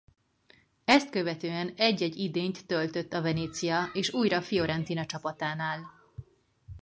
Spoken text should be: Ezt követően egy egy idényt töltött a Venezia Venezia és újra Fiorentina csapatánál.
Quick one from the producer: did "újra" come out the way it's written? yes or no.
yes